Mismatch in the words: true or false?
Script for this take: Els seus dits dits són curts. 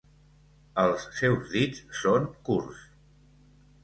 true